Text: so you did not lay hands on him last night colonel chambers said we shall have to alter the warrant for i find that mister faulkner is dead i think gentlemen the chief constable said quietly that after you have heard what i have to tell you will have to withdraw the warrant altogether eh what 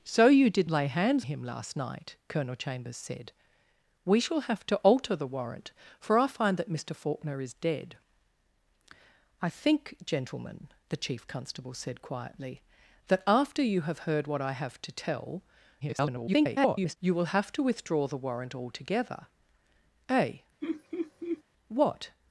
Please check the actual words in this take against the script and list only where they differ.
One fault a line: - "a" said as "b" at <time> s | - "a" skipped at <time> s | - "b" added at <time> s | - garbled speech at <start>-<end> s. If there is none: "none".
- "not" skipped at 0.7 s
- "on" skipped at 1.2 s
- garbled speech at 15.8-17.0 s